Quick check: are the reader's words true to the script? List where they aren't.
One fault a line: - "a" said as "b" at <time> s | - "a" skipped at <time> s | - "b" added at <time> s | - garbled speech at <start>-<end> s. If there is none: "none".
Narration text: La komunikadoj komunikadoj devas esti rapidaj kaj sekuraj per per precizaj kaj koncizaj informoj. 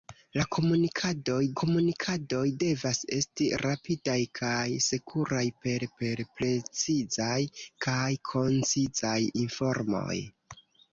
none